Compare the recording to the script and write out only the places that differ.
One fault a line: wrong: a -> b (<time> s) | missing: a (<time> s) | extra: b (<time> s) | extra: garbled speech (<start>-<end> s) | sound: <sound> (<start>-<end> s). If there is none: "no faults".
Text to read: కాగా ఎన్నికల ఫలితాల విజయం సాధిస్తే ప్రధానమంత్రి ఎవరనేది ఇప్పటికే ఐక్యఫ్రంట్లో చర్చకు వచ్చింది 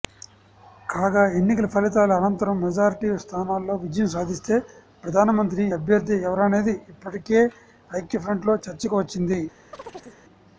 extra: అనంతరం మెజారిటీ స్థానాల్లో (2.2 s)
extra: అభ్యర్థి (5.8 s)
sound: chirp (9.7-10.2 s)